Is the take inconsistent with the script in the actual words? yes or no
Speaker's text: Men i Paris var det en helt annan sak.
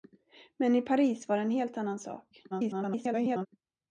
yes